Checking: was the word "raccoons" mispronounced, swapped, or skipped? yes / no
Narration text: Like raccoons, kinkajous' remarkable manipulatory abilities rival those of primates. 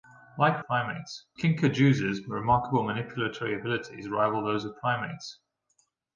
yes